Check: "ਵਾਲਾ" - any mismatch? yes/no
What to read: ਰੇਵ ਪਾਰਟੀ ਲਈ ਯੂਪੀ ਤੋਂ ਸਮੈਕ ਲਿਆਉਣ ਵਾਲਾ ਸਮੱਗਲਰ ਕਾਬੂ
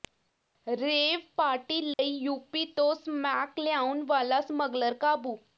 no